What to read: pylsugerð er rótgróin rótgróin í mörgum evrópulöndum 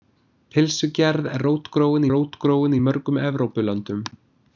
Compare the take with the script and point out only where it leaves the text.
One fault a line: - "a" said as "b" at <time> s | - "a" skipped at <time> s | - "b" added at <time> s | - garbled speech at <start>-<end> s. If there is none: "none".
none